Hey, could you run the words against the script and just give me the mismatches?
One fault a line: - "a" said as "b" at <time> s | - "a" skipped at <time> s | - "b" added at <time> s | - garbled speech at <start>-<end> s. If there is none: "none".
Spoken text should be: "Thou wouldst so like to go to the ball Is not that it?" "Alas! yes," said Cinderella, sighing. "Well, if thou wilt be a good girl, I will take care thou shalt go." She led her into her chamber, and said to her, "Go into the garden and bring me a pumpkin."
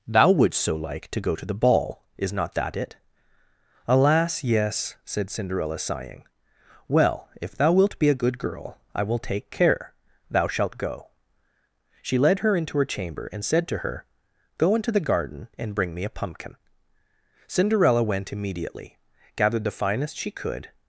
- "Cinderella went immediately gathered the finest she could" added at 17.5 s